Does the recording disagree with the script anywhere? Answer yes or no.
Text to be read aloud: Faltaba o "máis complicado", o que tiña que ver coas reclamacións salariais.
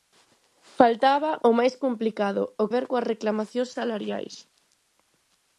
yes